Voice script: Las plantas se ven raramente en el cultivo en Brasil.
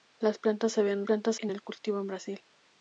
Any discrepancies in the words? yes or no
yes